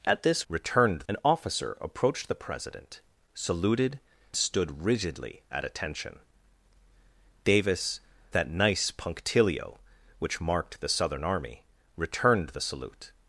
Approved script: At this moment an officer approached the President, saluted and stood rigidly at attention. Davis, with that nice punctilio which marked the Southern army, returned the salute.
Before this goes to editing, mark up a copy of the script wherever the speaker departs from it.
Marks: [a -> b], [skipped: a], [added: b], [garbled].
At this [moment -> returned] an officer approached the President, saluted [skipped: and] stood rigidly at attention. Davis, [skipped: with] that nice punctilio which marked the Southern army, returned the salute.